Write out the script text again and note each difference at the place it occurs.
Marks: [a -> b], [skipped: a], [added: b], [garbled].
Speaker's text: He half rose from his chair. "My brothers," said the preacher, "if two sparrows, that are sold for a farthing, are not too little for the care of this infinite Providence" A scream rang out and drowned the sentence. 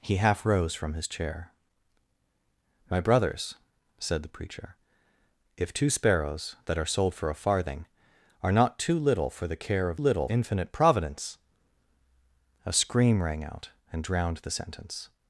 He half rose from his chair. "My brothers," said the preacher, "if two sparrows, that are sold for a farthing, are not too little for the care of [this -> little] infinite Providence" A scream rang out and drowned the sentence.